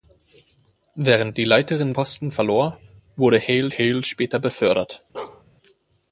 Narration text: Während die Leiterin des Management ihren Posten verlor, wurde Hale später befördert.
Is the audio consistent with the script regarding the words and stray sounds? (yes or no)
no